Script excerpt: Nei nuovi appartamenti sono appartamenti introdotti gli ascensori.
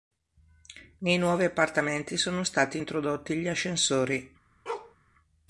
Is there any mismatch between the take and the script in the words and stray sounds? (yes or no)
yes